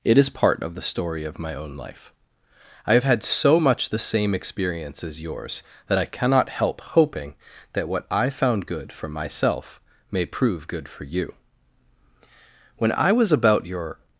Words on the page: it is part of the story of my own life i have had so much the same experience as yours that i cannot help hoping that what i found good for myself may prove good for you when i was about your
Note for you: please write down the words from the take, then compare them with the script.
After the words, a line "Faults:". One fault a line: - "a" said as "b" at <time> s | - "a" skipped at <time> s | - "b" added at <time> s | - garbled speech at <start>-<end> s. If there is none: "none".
it is part of the story of my own life i have had so much the same experience as yours that i cannot help hoping that what i found good for myself may prove good for you when i was about your
Faults:
none